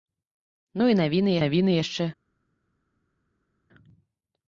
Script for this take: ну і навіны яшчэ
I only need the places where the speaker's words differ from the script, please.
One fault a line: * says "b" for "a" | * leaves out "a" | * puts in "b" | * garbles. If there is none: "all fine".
* puts in "навіны"